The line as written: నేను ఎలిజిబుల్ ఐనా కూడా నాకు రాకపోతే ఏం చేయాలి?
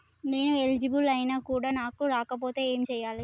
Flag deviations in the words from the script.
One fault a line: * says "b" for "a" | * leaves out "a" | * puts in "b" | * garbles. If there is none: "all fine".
all fine